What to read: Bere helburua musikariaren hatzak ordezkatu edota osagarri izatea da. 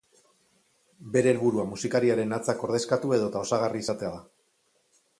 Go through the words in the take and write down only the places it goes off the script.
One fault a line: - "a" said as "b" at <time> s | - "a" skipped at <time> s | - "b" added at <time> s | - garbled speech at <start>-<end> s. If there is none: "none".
none